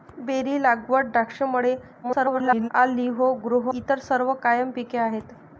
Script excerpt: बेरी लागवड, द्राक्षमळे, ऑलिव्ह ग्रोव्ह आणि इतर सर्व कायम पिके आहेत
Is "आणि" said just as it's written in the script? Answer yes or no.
no